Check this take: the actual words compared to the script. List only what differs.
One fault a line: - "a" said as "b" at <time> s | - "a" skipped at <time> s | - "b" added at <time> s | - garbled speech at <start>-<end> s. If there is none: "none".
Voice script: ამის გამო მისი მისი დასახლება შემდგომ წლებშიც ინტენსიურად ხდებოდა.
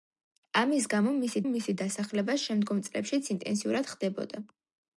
none